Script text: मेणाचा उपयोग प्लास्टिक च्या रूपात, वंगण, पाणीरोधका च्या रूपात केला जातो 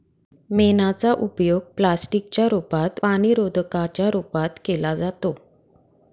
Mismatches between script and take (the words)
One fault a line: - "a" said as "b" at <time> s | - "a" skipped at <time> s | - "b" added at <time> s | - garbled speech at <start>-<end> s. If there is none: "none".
- "वंगण" skipped at 3.0 s